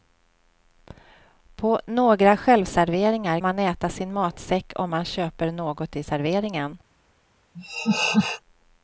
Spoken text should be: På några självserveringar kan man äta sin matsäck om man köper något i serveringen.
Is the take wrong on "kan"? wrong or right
wrong